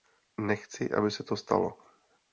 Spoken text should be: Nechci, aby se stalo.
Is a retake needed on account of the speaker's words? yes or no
yes